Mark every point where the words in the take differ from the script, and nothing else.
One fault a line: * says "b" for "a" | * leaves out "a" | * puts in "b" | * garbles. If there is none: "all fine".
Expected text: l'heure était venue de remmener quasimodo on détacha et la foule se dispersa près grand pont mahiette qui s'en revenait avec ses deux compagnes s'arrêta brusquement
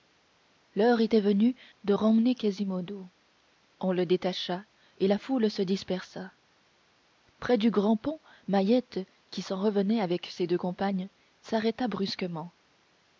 * puts in "le"
* puts in "du"